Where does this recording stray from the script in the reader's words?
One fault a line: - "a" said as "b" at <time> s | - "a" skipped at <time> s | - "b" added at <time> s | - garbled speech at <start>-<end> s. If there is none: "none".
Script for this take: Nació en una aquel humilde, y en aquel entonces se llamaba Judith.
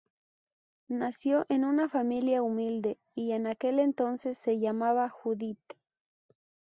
- "aquel" said as "familia" at 1.9 s